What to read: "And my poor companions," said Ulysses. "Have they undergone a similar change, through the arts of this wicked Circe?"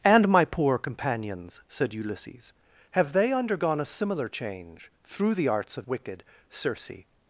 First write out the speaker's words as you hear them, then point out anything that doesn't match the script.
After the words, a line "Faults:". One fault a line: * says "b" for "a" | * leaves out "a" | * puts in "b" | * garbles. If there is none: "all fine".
"And my poor companions," said Ulysses. "Have they undergone a similar change, through the arts of wicked Circe?"
Faults:
* leaves out "this"